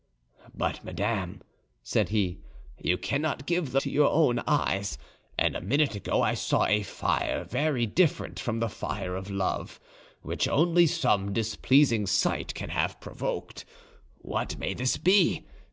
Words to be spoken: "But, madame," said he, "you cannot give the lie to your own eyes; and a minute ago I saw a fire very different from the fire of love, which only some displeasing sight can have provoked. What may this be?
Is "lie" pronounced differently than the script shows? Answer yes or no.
yes